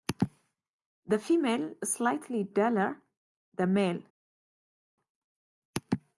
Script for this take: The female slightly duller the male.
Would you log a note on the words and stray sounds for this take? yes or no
no